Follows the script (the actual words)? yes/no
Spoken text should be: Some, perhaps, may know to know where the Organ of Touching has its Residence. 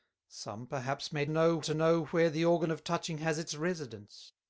yes